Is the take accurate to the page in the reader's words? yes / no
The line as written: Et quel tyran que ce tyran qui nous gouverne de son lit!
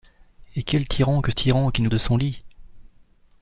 no